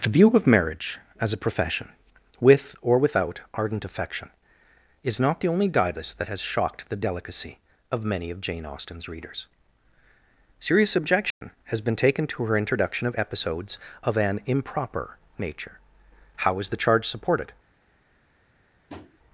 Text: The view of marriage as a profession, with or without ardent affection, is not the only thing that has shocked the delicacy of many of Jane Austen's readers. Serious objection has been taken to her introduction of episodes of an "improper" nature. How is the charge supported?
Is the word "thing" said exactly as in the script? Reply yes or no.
no